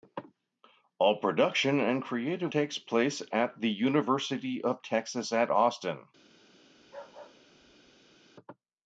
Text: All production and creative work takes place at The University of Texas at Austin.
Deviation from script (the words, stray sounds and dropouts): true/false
true